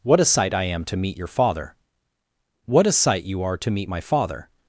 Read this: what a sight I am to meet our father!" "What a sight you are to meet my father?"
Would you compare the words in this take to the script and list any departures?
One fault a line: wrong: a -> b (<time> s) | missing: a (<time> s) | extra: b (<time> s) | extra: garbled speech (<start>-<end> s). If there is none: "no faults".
wrong: our -> your (1.1 s)